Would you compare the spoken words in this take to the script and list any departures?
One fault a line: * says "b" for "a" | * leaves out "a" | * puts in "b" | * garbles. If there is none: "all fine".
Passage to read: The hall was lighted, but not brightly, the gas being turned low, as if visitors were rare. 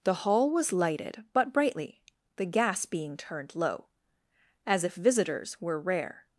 * leaves out "not"